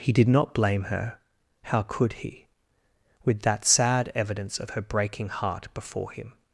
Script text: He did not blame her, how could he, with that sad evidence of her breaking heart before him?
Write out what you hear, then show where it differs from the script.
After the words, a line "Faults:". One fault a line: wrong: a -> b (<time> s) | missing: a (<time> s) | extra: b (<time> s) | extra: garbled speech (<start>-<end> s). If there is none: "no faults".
He did not blame her, how could he, with that sad evidence of her breaking heart before him?
Faults:
no faults